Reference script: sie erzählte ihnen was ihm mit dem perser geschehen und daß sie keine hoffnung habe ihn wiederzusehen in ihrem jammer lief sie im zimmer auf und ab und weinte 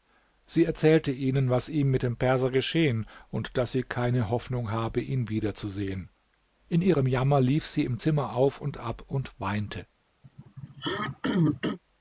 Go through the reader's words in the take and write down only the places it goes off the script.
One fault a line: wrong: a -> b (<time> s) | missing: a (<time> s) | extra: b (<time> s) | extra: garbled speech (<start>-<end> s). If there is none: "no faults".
no faults